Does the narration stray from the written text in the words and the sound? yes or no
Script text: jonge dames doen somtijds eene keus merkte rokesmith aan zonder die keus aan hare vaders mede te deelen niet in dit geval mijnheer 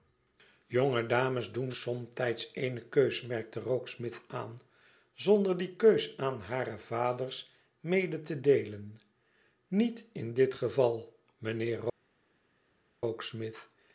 no